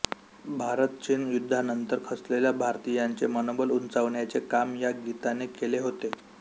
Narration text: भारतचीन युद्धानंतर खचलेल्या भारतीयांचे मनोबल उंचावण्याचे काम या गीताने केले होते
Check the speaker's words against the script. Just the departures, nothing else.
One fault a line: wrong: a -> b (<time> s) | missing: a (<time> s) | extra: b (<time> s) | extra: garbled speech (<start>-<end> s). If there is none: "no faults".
no faults